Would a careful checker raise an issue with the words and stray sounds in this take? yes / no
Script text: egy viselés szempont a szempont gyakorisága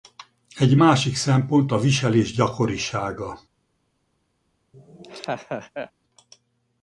yes